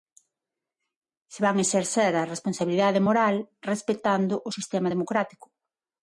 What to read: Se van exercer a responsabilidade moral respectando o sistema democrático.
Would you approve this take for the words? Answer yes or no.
yes